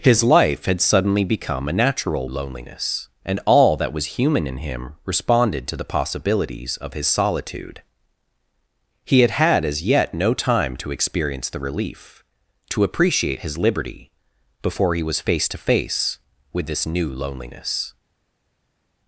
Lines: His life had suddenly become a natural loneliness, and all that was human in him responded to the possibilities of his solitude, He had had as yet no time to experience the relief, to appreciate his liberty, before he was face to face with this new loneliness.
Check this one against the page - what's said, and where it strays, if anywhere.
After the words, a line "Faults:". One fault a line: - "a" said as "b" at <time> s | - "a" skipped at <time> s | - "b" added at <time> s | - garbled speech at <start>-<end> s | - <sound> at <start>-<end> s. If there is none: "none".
His life had suddenly become a natural loneliness, and all that was human in him responded to the possibilities of his solitude, He had had as yet no time to experience the relief, to appreciate his liberty, before he was face to face with this new loneliness.
Faults:
none